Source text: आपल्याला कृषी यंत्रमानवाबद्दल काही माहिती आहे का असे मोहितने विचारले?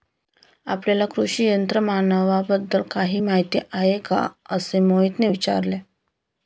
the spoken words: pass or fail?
pass